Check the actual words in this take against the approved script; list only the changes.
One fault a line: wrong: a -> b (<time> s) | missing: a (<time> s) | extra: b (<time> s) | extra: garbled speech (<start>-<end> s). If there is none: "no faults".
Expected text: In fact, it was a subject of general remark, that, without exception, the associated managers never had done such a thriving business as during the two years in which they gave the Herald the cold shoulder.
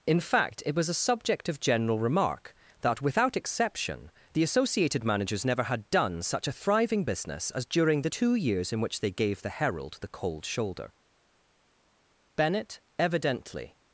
extra: Bennett evidently (12.3 s)